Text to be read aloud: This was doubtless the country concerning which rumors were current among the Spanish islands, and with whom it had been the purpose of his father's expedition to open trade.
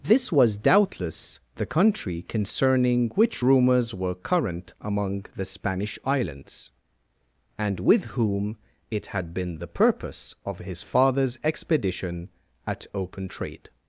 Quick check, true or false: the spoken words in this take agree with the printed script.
false